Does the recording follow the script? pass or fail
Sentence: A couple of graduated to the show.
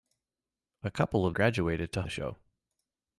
pass